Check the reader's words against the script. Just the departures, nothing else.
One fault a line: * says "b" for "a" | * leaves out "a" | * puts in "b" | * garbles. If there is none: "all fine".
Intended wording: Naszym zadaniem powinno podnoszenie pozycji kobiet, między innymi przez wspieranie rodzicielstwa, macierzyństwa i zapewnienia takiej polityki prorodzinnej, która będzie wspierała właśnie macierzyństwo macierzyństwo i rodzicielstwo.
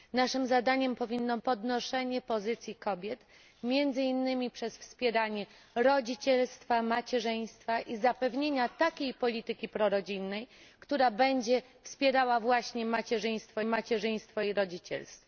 all fine